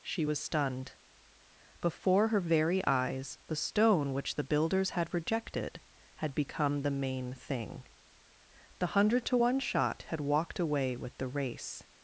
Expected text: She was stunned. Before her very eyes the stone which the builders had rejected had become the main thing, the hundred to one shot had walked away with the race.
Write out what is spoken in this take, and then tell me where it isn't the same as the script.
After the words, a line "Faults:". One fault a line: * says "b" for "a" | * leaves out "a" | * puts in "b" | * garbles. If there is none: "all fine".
She was stunned. Before her very eyes the stone which the builders had rejected had become the main thing, the hundred to one shot had walked away with the race.
Faults:
all fine